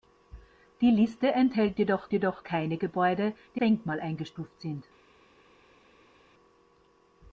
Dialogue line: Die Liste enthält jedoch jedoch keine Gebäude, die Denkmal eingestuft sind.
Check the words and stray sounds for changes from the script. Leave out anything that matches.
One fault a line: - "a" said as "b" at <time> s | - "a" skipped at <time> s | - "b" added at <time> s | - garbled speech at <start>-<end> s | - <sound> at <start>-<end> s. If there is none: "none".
none